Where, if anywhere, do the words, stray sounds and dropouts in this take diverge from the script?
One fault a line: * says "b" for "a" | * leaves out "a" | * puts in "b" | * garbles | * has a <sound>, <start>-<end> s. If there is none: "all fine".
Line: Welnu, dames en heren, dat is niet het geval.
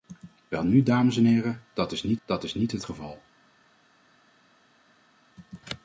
* puts in "dat is niet"